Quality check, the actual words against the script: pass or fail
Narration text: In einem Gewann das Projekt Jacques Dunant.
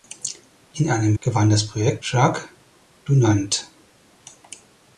pass